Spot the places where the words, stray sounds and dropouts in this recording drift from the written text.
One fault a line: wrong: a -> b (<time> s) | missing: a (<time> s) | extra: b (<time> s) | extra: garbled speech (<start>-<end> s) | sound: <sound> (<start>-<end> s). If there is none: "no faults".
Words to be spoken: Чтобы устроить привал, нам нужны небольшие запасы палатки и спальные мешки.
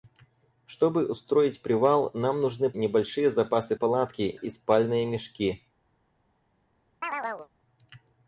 sound: chirp (7.0-7.5 s)